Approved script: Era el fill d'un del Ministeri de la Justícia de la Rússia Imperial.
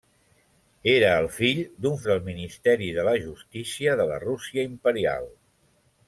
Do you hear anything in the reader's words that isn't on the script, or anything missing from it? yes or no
no